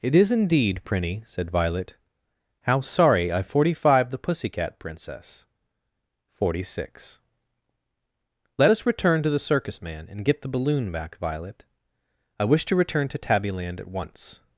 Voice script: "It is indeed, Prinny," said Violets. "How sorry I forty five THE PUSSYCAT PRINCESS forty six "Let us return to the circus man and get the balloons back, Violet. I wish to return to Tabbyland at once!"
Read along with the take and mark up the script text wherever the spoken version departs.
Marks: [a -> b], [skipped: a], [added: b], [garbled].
"It is indeed, Prinny," said [Violets. -> Violet] "How sorry I forty five THE PUSSYCAT PRINCESS forty six "Let us return to the circus man and get the [balloons -> balloon] back, Violet. I wish to return to Tabbyland at once!"